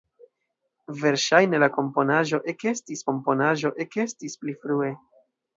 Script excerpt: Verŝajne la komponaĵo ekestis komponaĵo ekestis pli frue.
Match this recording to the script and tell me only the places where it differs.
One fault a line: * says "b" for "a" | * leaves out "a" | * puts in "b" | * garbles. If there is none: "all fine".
all fine